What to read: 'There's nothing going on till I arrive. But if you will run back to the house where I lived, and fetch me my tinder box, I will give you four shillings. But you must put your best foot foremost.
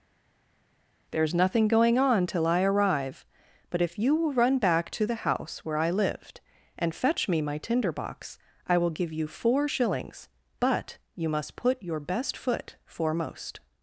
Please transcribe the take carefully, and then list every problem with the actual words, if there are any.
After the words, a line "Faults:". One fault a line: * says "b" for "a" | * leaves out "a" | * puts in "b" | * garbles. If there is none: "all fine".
'There's nothing going on till I arrive. But if you will run back to the house where I lived, and fetch me my tinder box, I will give you four shillings. But you must put your best foot foremost.
Faults:
all fine